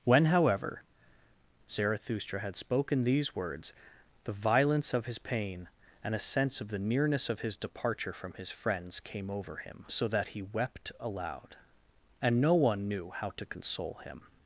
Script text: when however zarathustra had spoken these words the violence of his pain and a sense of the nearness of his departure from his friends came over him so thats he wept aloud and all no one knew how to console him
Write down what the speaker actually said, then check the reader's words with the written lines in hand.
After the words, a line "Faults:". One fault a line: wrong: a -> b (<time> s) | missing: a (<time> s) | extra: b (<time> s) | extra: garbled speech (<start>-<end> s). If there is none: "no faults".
when however zarathustra had spoken these words the violence of his pain and a sense of the nearness of his departure from his friends came over him so that he wept aloud and no one knew how to console him
Faults:
wrong: thats -> that (10.1 s)
missing: all (12.4 s)